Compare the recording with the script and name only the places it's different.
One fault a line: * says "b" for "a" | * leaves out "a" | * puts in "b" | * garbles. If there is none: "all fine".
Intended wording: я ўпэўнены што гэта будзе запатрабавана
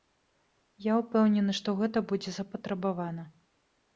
all fine